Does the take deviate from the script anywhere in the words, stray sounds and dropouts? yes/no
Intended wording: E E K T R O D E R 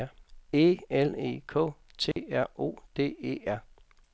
yes